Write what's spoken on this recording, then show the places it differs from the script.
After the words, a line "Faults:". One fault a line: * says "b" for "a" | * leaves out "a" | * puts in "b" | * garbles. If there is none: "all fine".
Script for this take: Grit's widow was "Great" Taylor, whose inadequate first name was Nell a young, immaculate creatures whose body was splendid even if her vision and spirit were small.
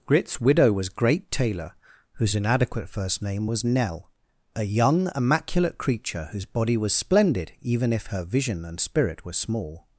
Grit's widow was "Great" Taylor, whose inadequate first name was Nell a young, immaculate creature whose body was splendid even if her vision and spirit were small.
Faults:
* says "creature" for "creatures"